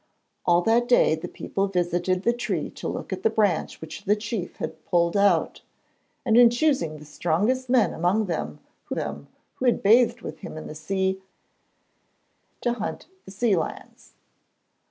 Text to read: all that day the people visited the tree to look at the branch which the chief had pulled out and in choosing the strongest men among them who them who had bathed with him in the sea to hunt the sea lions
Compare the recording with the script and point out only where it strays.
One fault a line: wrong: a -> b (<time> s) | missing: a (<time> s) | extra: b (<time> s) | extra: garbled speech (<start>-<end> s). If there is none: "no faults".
no faults